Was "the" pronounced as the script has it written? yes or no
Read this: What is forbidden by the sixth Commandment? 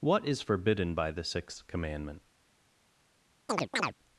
yes